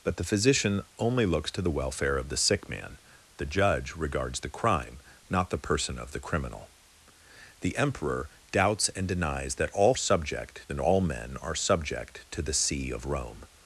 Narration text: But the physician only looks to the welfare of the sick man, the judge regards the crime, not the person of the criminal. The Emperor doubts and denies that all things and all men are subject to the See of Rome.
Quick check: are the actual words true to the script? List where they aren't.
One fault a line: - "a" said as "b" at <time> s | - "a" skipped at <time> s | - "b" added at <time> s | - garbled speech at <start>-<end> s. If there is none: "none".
- "things" said as "subject" at 10.0 s